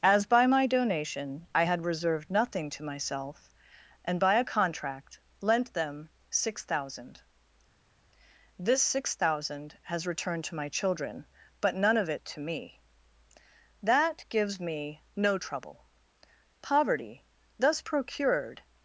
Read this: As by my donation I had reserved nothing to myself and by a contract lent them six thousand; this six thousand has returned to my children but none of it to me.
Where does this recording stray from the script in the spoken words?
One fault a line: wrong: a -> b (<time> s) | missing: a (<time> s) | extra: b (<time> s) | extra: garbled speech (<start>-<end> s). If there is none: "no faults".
extra: That gives me no trouble poverty thus procured (13.8 s)